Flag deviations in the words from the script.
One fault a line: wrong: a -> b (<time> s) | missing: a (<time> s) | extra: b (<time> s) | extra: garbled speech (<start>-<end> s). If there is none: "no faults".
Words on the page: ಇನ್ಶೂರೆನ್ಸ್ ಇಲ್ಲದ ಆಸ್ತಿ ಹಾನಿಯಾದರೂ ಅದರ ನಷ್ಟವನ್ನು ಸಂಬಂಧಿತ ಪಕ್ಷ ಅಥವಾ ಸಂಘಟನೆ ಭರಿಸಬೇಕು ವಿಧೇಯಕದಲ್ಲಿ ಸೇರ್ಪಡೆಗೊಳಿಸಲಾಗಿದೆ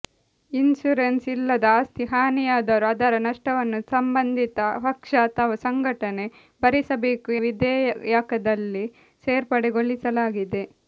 no faults